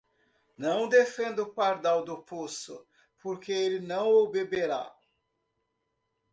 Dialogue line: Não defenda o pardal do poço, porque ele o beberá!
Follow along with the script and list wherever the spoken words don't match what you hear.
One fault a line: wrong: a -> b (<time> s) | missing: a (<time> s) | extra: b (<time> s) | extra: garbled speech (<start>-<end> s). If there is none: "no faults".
extra: não (3.8 s)